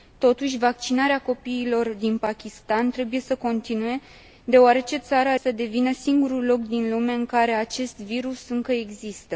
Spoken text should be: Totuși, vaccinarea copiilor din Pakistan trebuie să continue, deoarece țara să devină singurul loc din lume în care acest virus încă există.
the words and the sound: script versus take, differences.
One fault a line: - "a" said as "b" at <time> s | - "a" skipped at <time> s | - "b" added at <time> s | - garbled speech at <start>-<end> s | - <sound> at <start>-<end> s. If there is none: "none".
none